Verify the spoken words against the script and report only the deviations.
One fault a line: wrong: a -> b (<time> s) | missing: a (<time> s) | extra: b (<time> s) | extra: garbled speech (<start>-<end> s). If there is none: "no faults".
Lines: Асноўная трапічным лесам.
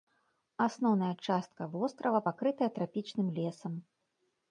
extra: частка вострава пакрытая (1.3 s)